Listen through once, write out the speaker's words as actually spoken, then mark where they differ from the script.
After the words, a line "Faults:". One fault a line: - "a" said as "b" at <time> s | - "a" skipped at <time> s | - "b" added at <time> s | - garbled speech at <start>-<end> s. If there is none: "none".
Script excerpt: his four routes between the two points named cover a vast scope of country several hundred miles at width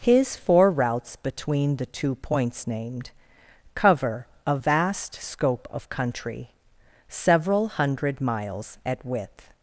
his four routes between the two points named cover a vast scope of country several hundred miles at width
Faults:
none